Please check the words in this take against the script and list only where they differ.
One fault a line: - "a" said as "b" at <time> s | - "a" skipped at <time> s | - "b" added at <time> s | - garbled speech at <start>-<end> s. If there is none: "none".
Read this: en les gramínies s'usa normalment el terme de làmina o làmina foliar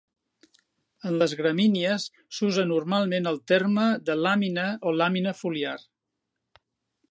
none